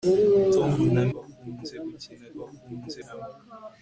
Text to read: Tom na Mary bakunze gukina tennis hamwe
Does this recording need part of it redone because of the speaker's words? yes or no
yes